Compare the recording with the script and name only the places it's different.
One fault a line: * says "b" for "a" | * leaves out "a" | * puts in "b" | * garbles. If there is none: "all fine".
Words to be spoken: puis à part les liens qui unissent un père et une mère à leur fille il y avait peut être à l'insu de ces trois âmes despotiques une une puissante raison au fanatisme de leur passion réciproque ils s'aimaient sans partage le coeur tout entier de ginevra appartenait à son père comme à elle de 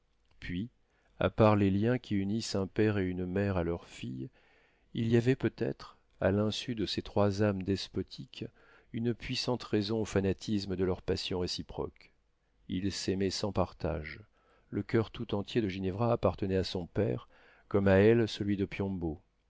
* leaves out "une"
* puts in "celui"